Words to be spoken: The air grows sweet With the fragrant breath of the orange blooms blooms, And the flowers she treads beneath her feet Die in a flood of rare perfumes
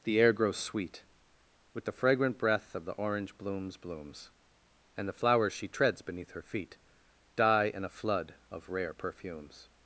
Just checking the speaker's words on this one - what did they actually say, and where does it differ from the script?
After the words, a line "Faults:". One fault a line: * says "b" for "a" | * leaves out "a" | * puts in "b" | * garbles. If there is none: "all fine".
The air grows sweet With the fragrant breath of the orange blooms blooms, And the flowers she treads beneath her feet Die in a flood of rare perfumes
Faults:
all fine